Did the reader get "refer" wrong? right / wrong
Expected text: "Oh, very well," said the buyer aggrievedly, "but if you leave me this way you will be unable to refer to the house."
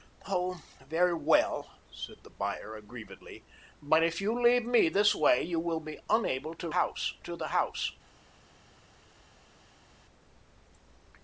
wrong